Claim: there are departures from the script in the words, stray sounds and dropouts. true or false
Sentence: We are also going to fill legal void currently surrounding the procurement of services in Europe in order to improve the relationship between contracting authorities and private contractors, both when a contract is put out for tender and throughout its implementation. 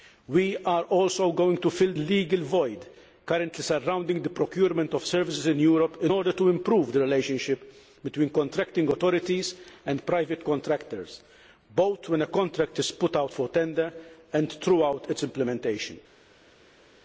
false